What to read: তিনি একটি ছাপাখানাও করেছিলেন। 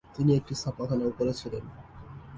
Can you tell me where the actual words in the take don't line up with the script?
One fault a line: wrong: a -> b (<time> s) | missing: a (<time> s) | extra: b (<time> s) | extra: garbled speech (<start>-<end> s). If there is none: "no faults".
no faults